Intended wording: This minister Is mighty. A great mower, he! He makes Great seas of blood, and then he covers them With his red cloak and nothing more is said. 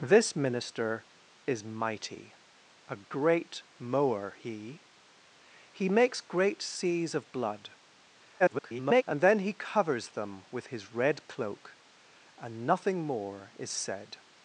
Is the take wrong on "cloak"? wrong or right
right